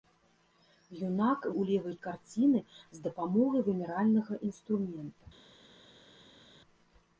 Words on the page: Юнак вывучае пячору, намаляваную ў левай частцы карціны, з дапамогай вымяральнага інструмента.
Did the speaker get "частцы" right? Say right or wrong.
wrong